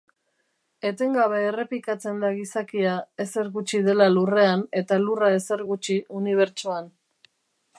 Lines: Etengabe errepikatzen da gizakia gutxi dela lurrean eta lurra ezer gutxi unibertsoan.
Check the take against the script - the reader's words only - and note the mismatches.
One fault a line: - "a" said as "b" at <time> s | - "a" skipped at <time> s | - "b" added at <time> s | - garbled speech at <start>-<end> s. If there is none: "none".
- "ezer" added at 3.2 s